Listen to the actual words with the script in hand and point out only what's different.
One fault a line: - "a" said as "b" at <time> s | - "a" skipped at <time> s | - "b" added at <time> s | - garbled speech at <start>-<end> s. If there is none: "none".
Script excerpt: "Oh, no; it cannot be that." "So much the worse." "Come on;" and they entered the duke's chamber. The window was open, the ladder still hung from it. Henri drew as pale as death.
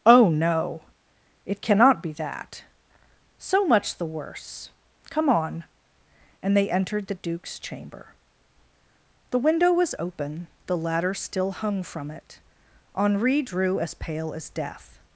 none